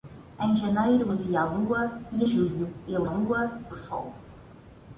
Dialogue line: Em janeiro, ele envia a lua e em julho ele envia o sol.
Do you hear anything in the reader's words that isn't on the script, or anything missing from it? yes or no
yes